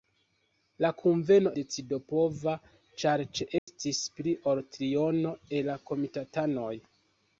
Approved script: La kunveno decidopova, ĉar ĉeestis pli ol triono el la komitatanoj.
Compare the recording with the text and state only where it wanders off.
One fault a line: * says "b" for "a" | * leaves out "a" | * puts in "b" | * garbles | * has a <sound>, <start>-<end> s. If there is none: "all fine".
* has a dropout, 3.6-3.7 s